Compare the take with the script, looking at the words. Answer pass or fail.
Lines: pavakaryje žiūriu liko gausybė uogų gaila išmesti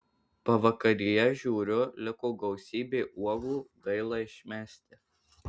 pass